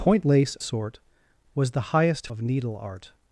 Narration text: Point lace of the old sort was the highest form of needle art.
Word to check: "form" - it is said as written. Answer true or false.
false